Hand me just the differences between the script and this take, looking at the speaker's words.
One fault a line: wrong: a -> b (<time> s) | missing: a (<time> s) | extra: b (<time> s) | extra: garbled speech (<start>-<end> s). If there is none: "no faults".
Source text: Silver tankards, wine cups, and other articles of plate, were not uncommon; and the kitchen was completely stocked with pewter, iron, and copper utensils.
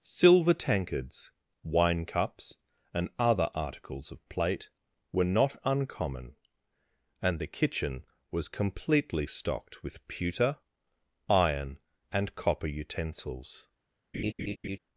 no faults